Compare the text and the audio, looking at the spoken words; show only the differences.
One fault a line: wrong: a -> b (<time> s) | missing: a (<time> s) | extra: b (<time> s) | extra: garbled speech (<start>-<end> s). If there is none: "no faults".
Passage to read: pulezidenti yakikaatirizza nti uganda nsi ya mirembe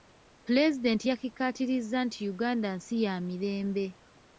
no faults